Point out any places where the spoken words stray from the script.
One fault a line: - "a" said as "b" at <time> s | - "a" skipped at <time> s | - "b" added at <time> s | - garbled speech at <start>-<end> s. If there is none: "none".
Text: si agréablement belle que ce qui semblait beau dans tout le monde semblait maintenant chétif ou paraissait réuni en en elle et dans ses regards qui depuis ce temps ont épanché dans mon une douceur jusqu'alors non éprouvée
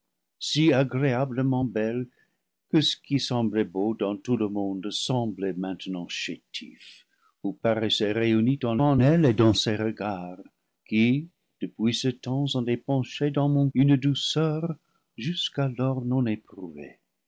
none